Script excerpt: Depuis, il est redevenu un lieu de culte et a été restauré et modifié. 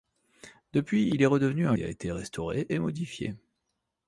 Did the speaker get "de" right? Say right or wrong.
wrong